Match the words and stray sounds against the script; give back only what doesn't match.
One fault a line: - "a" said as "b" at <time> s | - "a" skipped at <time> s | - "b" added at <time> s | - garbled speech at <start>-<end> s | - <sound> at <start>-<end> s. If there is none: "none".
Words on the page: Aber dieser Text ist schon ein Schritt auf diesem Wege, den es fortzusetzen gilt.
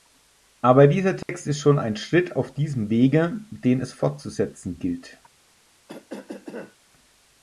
- dropout at 1.2-1.3 s
- cough at 5.9-6.8 s